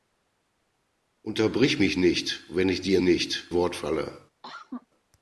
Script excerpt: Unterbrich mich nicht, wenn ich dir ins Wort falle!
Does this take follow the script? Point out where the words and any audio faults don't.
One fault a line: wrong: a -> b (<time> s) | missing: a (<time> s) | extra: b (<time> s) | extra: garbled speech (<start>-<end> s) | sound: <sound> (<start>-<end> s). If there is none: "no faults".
wrong: ins -> nicht (3.0 s)
sound: cough (4.4-4.9 s)